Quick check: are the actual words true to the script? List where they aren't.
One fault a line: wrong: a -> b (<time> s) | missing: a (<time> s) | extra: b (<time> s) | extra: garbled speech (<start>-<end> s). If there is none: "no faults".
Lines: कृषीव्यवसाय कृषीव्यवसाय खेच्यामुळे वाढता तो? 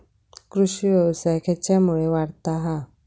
missing: कृषीव्यवसाय (1.4 s)
wrong: तो -> हा (2.6 s)